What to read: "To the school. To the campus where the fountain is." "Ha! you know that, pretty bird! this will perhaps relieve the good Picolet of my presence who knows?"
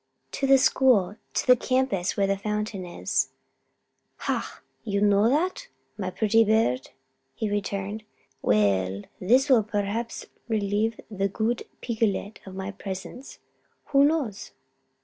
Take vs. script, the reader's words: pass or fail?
fail